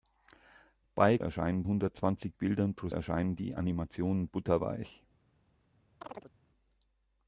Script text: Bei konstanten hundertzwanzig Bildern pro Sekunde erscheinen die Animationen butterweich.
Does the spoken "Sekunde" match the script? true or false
false